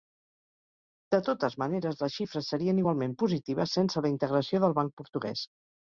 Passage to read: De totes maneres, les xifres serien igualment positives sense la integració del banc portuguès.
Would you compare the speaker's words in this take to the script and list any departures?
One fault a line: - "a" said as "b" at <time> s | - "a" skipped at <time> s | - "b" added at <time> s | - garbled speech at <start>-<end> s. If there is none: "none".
none